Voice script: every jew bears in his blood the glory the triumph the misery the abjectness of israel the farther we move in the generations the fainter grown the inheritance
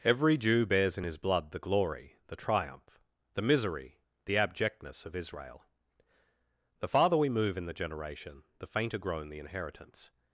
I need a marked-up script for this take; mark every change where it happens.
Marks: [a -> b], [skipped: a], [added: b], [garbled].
every jew bears in his blood the glory the triumph the misery the abjectness of israel the farther we move in the [generations -> generation] the fainter grown the inheritance